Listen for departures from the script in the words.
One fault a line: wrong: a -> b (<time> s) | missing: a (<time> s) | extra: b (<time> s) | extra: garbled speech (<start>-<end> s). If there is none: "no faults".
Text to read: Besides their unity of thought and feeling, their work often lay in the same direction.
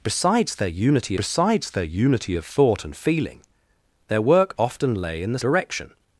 extra: besides their unity (1.2 s)
missing: same (5.4 s)